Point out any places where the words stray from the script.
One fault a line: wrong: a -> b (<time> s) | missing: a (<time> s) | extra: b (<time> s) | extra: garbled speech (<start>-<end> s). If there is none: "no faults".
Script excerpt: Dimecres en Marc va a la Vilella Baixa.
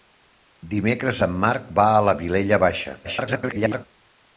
extra: garbled speech (3.0-3.9 s)